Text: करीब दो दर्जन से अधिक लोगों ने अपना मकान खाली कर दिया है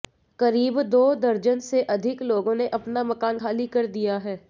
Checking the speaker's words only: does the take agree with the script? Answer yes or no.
yes